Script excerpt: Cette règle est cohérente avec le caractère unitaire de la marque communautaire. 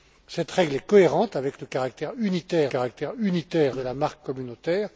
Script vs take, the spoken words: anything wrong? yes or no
yes